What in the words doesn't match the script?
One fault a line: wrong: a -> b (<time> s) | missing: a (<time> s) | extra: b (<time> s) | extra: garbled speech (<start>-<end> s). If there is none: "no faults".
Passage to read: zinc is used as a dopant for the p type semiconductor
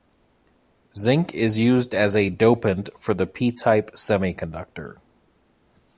no faults